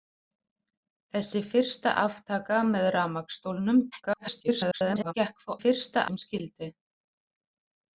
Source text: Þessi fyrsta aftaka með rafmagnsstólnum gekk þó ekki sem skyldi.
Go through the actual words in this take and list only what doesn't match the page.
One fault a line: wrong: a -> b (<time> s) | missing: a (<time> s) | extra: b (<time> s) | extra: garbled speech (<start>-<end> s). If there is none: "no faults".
extra: garbled speech (3.9-5.1 s)
wrong: ekki -> fyrsta (5.6 s)